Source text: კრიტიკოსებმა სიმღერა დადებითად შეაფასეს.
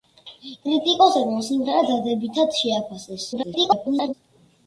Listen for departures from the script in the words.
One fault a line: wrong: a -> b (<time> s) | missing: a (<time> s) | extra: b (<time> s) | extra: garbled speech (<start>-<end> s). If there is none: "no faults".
extra: garbled speech (3.3-4.1 s)